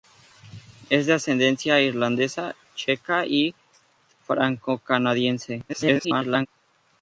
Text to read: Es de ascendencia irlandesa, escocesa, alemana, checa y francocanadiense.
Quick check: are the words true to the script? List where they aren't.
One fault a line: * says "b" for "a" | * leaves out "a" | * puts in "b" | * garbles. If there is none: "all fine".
* leaves out "escocesa alemana"
* garbles